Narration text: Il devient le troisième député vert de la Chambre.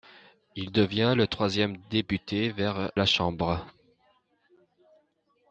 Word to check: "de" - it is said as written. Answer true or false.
false